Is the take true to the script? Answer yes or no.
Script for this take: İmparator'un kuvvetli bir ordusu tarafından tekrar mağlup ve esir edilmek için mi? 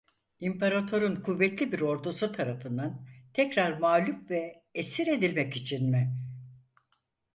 yes